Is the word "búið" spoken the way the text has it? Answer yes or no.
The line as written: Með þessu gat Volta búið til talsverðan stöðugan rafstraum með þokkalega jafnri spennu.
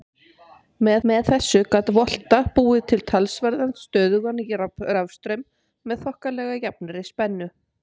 yes